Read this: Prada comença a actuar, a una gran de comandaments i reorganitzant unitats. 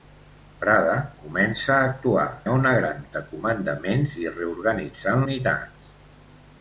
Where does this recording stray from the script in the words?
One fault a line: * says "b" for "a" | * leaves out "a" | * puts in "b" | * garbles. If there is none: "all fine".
all fine